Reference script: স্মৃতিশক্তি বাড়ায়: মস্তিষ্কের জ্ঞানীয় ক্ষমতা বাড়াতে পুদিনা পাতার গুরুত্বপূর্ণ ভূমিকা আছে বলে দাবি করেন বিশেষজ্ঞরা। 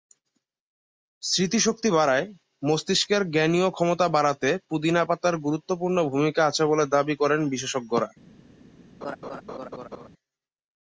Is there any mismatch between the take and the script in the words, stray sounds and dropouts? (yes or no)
yes